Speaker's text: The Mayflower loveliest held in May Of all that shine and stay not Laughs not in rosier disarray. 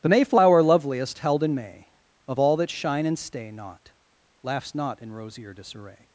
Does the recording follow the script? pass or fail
pass